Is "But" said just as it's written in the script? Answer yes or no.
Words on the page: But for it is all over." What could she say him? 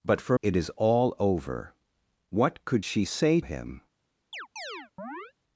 yes